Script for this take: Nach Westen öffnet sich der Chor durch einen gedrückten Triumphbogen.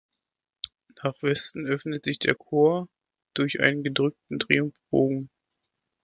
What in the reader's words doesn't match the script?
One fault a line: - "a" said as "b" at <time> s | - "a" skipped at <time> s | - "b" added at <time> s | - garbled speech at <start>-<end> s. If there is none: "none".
none